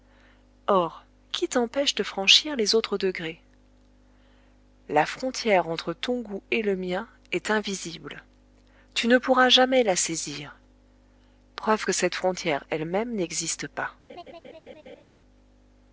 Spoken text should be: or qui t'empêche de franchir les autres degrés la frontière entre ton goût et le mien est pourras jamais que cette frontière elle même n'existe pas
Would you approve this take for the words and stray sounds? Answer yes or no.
no